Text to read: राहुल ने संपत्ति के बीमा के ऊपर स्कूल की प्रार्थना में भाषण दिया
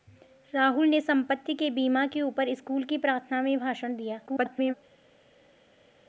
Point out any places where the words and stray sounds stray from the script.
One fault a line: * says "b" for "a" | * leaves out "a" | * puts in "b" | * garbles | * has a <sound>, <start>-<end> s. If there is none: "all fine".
* garbles